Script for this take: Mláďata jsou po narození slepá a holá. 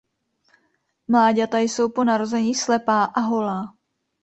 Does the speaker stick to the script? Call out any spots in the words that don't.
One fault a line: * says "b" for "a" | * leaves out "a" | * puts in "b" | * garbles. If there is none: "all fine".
all fine